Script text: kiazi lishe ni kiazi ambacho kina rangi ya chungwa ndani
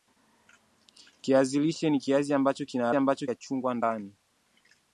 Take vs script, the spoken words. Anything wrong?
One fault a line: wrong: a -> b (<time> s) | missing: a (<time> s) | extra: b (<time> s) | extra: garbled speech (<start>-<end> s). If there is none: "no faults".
wrong: rangi -> ambacho (2.9 s)